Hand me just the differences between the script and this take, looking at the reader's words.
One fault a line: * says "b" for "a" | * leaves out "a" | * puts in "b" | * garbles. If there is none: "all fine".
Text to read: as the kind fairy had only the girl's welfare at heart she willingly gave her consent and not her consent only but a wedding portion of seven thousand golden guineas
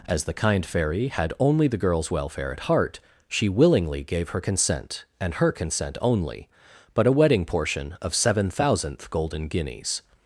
* leaves out "not"
* says "thousandth" for "thousand"